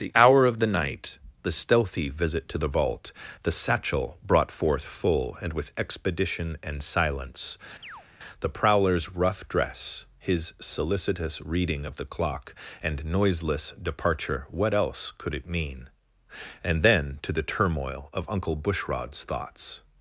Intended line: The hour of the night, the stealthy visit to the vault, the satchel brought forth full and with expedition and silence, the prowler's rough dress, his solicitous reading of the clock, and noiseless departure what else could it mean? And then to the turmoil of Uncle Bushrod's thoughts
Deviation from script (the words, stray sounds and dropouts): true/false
true